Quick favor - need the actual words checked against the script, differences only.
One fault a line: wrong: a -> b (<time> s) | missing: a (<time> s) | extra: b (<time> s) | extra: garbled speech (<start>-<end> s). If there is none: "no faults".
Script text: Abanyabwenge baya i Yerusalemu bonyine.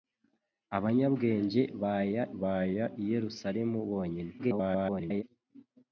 extra: baya (2.4 s)
extra: garbled speech (4.4-5.2 s)